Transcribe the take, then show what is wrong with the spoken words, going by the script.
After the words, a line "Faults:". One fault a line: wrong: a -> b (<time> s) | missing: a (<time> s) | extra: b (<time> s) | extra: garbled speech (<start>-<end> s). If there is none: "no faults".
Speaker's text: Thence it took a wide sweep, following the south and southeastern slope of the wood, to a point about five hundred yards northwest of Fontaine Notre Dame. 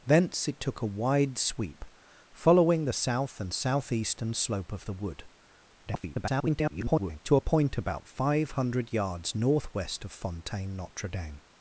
Thence it took a wide sweep, following the south and southeastern slope of the wood, [garbled] to a point about five hundred yards northwest of Fontaine Notre Dame.
Faults:
extra: garbled speech (5.9-7.2 s)